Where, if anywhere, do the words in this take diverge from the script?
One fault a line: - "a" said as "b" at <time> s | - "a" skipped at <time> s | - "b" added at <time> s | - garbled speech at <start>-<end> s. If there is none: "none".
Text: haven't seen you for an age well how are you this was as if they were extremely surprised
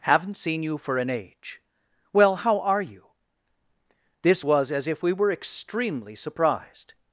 - "they" said as "we" at 5.0 s